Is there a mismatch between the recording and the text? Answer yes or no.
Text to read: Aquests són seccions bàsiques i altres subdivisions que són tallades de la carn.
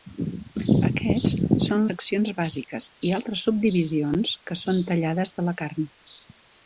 no